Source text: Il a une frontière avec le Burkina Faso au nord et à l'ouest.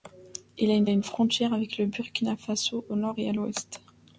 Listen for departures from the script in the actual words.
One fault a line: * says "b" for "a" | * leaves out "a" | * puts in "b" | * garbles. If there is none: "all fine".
* puts in "une"